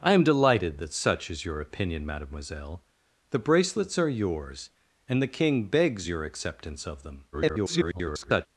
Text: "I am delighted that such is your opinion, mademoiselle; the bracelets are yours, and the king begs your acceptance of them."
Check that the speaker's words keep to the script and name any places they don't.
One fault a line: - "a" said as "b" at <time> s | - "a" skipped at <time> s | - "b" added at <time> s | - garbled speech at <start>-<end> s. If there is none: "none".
- garbled speech at 7.3-8.5 s